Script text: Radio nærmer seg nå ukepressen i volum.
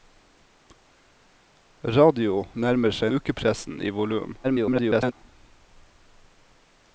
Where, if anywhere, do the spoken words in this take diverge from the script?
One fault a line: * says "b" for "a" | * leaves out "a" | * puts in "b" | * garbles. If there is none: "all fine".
* leaves out "nå"
* garbles